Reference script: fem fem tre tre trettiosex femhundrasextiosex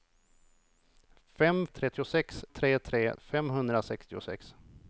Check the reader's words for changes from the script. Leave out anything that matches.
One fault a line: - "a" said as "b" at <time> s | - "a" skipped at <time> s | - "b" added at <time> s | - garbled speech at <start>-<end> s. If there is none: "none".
- "fem" said as "trettiosex" at 1.7 s
- "trettiosex" skipped at 3.2 s